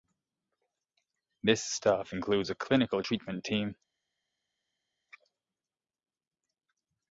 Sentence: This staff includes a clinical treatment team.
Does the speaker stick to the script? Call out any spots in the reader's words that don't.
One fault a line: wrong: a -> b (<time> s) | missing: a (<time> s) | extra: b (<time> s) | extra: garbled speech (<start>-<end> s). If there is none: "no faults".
no faults